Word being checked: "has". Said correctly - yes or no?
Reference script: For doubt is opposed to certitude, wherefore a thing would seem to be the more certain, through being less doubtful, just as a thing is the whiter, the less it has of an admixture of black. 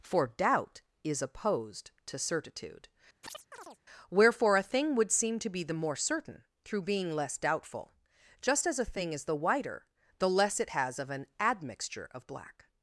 yes